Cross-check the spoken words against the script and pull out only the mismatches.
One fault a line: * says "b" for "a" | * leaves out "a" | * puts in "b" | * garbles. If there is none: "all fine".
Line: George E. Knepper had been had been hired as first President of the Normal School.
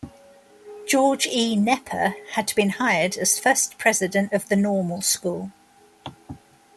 * leaves out "had been"